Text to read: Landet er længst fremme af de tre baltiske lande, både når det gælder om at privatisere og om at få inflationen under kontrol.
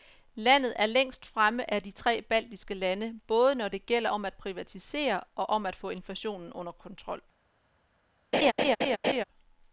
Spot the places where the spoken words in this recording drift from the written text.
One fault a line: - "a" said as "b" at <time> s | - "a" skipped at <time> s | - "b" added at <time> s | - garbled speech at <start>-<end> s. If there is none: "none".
none